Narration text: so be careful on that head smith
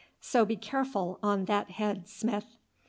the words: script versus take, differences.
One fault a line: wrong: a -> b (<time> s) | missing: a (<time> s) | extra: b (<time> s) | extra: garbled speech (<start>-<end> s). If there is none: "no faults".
no faults